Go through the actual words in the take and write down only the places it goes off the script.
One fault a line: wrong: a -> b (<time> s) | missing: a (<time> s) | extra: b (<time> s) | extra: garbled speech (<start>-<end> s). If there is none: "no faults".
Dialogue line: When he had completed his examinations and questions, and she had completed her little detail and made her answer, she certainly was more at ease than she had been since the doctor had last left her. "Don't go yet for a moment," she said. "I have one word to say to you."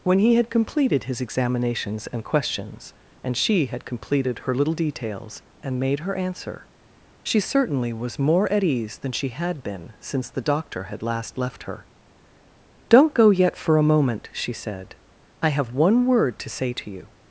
wrong: detail -> details (4.7 s)